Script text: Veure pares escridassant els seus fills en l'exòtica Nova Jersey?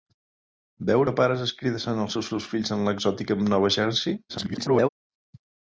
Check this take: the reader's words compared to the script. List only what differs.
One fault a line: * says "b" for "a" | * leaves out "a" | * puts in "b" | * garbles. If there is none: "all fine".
* puts in "seus"
* garbles